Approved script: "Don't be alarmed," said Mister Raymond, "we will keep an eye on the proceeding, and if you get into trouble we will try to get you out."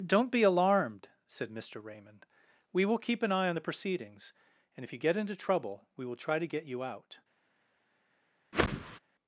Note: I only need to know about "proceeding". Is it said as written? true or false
false